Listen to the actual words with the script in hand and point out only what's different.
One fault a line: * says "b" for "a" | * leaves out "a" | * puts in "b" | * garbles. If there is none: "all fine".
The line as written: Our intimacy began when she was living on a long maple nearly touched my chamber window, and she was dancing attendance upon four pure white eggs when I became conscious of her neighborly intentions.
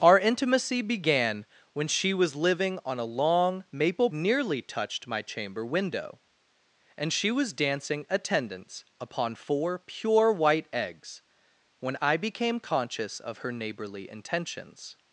all fine